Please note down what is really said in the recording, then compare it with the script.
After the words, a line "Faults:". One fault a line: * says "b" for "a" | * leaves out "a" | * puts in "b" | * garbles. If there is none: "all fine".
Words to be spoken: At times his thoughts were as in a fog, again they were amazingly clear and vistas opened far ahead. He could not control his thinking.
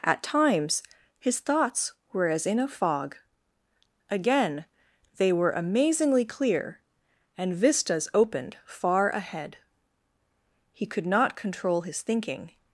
At times his thoughts were as in a fog, again they were amazingly clear and vistas opened far ahead. He could not control his thinking.
Faults:
all fine